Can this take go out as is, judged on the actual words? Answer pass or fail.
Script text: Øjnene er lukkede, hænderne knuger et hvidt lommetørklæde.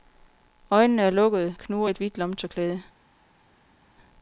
fail